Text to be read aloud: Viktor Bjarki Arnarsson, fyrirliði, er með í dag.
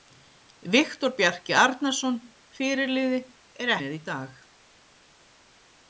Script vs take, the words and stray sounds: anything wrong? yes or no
no